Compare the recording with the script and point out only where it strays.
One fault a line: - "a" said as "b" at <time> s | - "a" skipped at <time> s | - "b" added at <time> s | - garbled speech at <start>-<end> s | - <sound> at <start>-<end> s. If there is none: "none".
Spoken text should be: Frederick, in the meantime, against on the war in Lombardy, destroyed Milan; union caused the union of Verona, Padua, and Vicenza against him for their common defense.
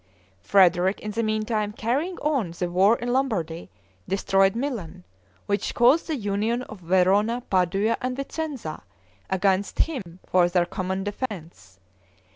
- "against" said as "carrying" at 1.7 s
- "union" said as "which" at 5.5 s
- dropout at 10.0-10.1 s
- dropout at 11.3-11.3 s